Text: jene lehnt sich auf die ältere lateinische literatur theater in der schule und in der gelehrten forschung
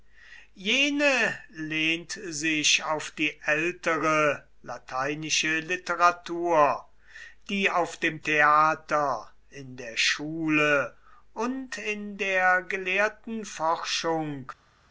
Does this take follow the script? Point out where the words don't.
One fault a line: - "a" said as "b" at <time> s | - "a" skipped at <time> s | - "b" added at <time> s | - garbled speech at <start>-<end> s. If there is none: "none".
- "die auf dem" added at 7.5 s